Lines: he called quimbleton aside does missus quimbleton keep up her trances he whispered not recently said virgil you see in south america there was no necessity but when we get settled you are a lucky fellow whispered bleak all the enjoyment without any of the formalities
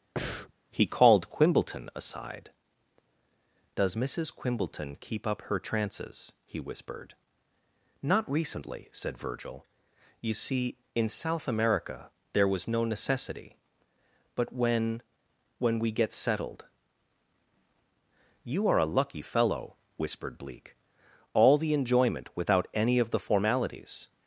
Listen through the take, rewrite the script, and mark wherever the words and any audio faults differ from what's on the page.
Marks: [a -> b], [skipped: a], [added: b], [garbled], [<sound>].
[breath] he called quimbleton aside does missus quimbleton keep up her trances he whispered not recently said virgil you see in south america there was no necessity but when [added: when] we get settled you are a lucky fellow whispered bleak all the enjoyment without any of the formalities